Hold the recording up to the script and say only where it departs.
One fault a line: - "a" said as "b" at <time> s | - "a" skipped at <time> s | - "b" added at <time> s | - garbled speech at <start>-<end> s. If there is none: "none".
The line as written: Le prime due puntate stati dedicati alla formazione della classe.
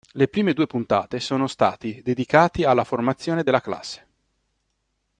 - "sono" added at 1.2 s